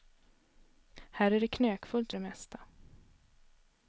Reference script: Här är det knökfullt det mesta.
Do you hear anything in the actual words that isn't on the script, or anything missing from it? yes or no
no